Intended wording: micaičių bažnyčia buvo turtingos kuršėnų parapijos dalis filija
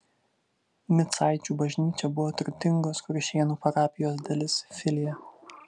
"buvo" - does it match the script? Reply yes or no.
yes